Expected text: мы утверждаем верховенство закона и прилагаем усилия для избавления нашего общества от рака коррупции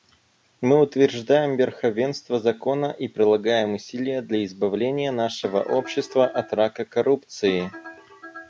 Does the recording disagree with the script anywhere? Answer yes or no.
no